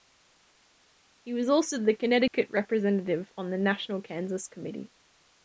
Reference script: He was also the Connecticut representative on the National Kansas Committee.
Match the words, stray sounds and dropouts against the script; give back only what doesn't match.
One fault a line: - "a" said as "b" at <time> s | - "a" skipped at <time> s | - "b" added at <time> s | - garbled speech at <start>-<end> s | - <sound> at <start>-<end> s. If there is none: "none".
- dropout at 2.3-2.3 s